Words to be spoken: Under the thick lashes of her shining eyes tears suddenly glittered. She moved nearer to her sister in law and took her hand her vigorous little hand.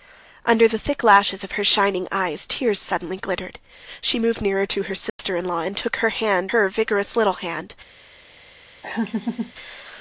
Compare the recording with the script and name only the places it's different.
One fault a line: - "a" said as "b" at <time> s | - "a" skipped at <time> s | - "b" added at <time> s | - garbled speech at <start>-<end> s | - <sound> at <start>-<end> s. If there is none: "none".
- dropout at 5.1-5.2 s
- laugh at 8.8-9.5 s